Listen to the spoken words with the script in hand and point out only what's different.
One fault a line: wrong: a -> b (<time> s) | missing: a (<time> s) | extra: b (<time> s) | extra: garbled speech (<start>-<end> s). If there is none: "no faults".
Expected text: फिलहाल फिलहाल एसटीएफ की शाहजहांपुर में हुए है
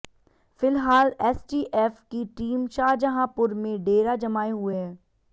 missing: फिलहाल (1.1 s)
extra: टीम (2.4 s)
extra: डेरा जमाए (3.8 s)